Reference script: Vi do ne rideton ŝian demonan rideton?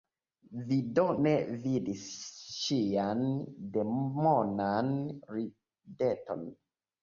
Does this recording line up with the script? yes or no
no